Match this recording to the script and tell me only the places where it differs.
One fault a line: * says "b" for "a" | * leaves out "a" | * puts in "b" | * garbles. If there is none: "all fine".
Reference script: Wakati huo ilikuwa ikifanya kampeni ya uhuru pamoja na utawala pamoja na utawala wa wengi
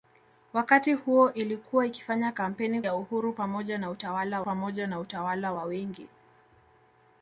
all fine